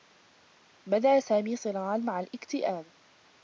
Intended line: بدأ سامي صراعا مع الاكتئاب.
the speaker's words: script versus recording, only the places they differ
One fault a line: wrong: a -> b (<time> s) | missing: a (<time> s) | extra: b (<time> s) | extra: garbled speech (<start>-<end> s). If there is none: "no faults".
no faults